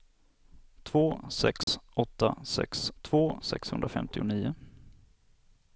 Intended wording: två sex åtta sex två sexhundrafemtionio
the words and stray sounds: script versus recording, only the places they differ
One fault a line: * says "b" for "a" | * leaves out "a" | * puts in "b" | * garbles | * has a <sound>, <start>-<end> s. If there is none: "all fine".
* has a dropout, 1.6-1.7 s